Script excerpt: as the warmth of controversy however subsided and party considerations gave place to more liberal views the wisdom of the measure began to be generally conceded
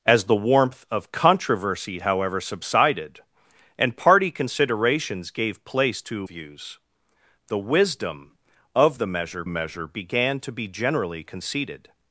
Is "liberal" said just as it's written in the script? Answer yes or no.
no